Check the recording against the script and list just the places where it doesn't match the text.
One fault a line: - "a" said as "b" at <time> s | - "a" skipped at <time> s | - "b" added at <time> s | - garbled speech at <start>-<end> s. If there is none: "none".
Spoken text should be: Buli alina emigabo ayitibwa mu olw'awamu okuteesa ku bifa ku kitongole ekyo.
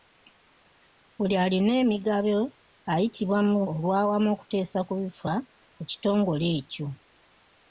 none